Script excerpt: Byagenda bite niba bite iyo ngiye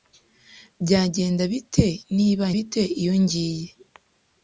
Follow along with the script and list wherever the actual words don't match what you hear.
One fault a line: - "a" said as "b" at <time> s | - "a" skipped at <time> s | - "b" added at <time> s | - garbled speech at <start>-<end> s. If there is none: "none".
none